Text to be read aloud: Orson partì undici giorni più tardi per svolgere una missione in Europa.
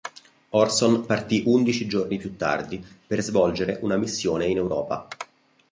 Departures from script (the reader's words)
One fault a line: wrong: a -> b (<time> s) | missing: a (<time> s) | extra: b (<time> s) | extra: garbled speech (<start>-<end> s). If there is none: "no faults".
no faults